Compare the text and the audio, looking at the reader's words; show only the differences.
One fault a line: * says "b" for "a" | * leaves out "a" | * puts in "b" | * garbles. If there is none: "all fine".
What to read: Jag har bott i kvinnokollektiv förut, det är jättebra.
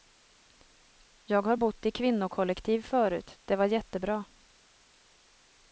* says "var" for "är"